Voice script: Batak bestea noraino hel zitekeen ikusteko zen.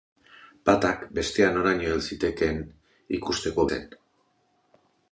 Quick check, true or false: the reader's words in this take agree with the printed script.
true